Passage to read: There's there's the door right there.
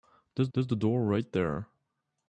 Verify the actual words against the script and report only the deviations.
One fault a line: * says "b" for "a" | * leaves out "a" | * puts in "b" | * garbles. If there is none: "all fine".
all fine